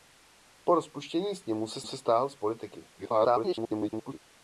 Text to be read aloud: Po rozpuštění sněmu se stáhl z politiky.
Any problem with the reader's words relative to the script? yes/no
yes